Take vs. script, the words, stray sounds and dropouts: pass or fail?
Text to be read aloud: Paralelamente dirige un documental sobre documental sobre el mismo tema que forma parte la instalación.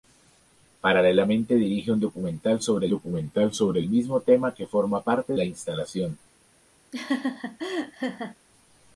fail